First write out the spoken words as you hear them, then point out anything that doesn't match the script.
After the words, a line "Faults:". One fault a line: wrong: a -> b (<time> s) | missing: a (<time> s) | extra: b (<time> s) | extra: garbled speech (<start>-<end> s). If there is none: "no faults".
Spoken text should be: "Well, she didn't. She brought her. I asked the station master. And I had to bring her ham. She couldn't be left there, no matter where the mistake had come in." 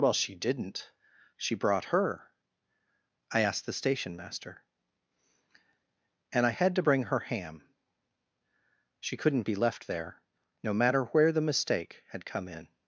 "Well, she didn't. She brought her. I asked the station master. And I had to bring her ham. She couldn't be left there, no matter where the mistake had come in."
Faults:
no faults